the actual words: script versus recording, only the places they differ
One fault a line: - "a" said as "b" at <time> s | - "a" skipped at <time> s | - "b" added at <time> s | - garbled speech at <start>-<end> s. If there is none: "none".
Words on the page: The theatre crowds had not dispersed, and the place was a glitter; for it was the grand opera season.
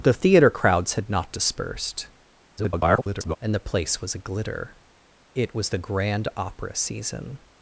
- garbled speech at 2.6-3.4 s
- "for" skipped at 4.8 s